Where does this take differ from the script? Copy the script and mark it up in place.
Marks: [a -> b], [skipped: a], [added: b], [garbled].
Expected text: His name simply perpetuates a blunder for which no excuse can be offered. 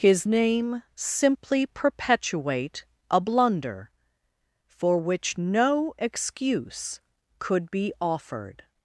His name simply [perpetuates -> perpetuate] a blunder for which no excuse [can -> could] be offered.